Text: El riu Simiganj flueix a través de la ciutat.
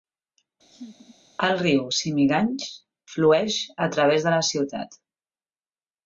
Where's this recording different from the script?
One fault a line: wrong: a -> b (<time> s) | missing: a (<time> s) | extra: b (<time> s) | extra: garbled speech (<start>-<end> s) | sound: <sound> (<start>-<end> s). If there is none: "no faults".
sound: laugh (0.7-1.2 s)